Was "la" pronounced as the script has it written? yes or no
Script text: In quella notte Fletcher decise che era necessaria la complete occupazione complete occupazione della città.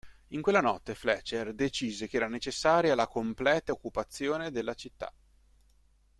yes